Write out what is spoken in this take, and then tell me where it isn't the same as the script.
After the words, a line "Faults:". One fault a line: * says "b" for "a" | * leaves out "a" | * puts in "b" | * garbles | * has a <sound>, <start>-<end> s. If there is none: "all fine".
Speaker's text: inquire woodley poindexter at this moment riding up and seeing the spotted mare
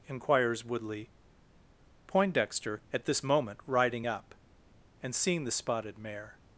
inquires woodley poindexter at this moment riding up and seeing the spotted mare
Faults:
* says "inquires" for "inquire"